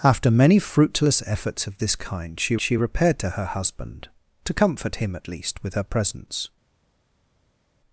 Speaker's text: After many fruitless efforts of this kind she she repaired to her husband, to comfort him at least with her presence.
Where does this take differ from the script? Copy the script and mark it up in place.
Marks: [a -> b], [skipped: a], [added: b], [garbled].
After many fruitless efforts of this kind she she repaired to her husband, to comfort him at least with her presence.